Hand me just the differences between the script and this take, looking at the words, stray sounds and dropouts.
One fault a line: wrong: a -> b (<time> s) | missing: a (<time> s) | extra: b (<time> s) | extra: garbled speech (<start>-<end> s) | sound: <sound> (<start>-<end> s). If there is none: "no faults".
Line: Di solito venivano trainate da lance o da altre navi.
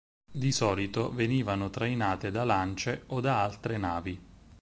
no faults